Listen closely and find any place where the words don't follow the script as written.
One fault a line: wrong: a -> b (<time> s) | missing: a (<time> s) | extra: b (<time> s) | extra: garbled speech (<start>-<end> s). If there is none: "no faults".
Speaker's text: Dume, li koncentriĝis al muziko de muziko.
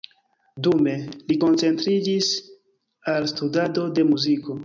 wrong: muziko -> studado (3.4 s)